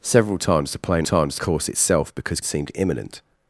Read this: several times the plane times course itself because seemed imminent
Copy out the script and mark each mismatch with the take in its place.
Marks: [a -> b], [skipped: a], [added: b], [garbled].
several times the plane times course itself because seemed imminent